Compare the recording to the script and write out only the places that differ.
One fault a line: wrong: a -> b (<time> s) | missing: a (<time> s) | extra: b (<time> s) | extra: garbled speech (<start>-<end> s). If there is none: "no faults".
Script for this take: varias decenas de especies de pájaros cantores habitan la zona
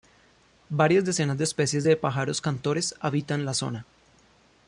no faults